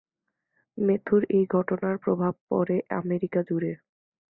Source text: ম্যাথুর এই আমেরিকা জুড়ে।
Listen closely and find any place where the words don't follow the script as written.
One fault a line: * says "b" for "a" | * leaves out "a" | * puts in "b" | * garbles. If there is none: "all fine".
* puts in "ঘটনার প্রভাব পড়ে"